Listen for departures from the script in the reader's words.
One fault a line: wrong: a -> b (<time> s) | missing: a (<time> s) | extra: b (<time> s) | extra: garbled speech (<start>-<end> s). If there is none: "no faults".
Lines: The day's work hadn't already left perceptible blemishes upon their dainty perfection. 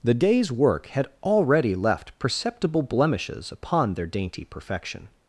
wrong: hadn't -> had (0.9 s)